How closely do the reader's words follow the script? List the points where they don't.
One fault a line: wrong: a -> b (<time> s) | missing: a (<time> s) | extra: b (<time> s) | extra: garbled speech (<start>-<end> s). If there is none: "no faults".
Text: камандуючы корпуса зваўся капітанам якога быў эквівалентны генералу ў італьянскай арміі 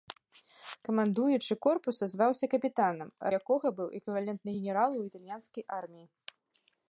no faults